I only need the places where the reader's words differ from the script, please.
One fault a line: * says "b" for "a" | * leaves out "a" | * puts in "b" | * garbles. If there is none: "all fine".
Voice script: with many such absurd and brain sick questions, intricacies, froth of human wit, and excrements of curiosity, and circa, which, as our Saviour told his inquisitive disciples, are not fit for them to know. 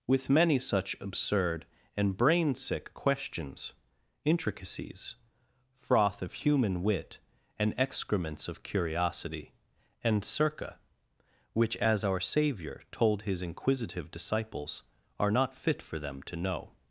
all fine